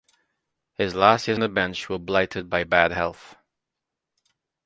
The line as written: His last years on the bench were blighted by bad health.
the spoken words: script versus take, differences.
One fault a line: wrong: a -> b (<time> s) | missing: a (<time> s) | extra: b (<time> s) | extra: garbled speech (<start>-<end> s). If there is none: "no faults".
missing: on (1.4 s)